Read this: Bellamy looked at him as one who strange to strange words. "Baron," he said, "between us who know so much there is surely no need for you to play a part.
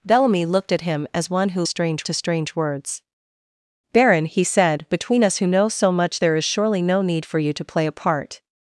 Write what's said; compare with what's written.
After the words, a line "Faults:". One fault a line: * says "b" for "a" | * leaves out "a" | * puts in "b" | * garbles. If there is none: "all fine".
Bellamy looked at him as one who strange to strange words. "Baron," he said, "between us who know so much there is surely no need for you to play a part.
Faults:
all fine